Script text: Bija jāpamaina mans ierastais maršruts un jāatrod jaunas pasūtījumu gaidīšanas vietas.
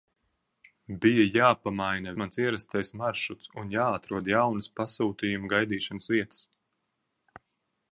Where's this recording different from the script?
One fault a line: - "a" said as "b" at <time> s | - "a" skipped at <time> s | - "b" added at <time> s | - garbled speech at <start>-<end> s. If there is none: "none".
none